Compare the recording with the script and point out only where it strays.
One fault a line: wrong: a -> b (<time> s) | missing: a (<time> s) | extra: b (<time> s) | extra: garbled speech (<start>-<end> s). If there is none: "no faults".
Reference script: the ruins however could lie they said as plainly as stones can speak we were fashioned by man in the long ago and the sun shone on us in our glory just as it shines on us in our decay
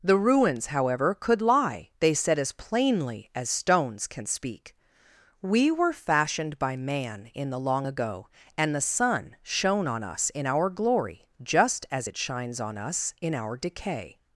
no faults